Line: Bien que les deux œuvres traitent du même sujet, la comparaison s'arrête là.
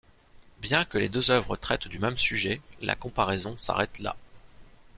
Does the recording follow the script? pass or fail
pass